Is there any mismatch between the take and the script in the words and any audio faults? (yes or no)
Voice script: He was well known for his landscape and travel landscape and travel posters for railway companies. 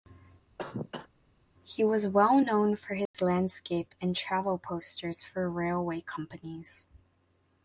yes